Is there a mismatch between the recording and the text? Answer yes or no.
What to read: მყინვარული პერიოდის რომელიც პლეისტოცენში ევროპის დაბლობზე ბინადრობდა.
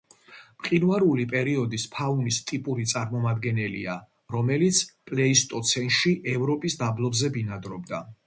yes